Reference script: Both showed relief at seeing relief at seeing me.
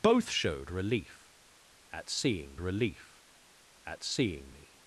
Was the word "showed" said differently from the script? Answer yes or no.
no